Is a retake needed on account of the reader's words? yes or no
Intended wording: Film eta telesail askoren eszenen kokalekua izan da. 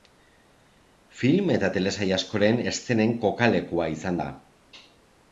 no